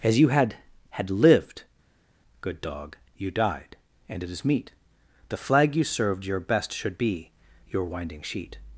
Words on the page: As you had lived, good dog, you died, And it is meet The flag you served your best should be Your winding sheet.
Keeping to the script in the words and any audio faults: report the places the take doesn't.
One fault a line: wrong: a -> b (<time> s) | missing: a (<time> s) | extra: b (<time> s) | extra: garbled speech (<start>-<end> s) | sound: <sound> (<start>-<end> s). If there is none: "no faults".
extra: had (0.9 s)